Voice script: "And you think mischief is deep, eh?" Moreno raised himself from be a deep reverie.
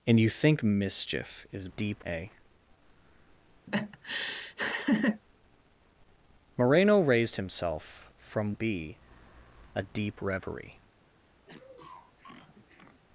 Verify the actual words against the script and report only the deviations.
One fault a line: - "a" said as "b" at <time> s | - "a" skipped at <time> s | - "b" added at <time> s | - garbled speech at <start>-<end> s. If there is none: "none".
none